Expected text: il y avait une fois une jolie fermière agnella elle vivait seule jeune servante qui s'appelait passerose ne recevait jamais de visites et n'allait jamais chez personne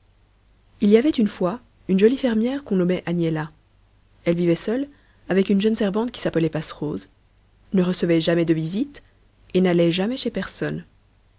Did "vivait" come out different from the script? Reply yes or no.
no